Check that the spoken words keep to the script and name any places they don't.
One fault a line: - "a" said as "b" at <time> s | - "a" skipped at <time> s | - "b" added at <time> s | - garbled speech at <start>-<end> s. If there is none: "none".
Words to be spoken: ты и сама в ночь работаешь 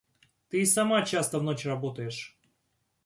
- "часто" added at 1.1 s